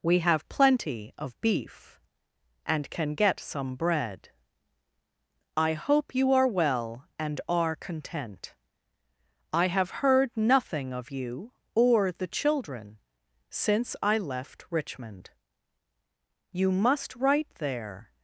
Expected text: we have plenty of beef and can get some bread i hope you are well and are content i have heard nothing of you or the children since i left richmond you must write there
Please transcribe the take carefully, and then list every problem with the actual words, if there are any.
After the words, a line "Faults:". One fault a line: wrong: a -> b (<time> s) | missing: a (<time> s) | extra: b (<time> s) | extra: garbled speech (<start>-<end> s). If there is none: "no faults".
we have plenty of beef and can get some bread i hope you are well and are content i have heard nothing of you or the children since i left richmond you must write there
Faults:
no faults